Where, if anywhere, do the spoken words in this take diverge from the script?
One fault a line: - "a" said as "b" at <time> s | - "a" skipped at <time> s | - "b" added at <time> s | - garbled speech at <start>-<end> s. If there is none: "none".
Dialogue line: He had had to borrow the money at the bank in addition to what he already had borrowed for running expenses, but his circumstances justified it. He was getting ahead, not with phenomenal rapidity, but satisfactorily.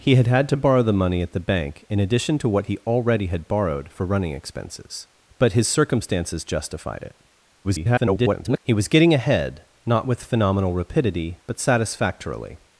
- garbled speech at 7.6-8.6 s